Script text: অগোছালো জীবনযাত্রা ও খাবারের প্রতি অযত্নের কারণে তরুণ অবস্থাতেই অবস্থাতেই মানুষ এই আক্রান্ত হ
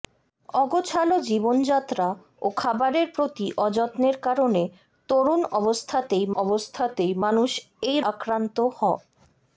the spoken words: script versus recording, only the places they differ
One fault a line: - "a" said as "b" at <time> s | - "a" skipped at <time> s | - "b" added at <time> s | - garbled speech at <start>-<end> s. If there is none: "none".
none